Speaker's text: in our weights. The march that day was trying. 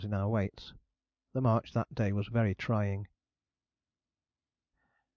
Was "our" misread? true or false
false